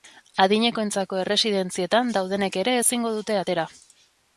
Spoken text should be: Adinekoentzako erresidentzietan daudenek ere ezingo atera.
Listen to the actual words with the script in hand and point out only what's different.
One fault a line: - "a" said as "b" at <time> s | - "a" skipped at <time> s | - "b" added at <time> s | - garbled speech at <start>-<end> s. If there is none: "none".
- "dute" added at 3.2 s